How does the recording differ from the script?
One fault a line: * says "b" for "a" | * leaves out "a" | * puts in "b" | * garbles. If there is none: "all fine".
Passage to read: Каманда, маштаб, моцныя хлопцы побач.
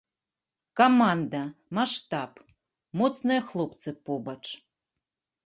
all fine